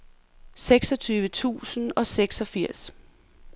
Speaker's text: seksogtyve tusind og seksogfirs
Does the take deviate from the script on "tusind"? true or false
false